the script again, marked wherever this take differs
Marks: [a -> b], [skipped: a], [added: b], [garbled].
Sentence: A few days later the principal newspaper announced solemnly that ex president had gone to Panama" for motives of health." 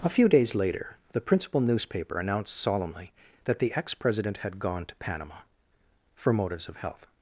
A few days later the principal newspaper announced solemnly that [added: the] ex president had gone to Panama" for motives of health."